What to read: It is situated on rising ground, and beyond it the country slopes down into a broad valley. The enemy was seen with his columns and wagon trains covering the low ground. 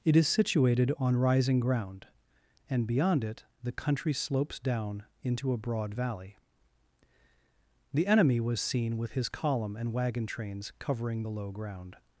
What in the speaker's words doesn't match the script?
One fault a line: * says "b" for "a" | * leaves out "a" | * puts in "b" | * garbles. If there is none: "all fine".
* says "column" for "columns"